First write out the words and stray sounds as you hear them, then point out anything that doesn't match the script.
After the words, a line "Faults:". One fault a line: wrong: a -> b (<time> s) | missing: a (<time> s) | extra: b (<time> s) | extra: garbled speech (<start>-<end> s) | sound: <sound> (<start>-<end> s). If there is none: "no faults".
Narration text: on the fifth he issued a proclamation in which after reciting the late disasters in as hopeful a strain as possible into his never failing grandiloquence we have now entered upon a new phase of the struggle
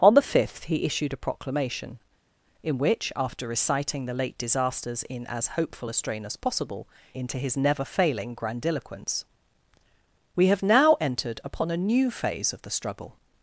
on the fifth he issued a proclamation in which after reciting the late disasters in as hopeful a strain as possible into his never failing grandiloquence we have now entered upon a new phase of the struggle
Faults:
no faults